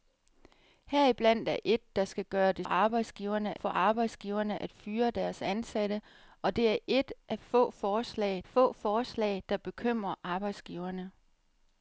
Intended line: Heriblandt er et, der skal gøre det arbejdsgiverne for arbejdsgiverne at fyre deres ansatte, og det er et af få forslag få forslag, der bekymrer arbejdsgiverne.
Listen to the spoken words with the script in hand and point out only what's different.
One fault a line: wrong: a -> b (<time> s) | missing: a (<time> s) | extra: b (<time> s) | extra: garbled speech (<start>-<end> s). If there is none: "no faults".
no faults